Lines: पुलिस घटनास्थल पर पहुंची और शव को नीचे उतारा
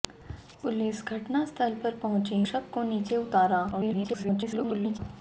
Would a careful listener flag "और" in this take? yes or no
yes